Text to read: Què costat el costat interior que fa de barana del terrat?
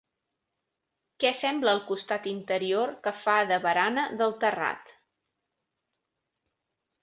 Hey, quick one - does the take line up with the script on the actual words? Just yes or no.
no